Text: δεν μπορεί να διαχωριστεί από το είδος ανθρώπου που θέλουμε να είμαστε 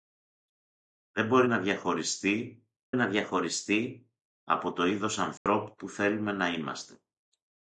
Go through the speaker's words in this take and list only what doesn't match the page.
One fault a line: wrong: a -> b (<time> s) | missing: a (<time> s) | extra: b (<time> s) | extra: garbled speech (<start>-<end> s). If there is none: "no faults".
extra: να διαχωριστεί (3.0 s)